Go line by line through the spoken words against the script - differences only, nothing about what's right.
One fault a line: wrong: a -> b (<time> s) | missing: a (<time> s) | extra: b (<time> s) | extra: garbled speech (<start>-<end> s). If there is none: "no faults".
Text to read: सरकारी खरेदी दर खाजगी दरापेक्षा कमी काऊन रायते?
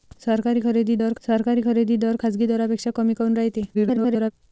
extra: सरकारी खरेदी दर (1.2 s)
extra: garbled speech (3.7-4.3 s)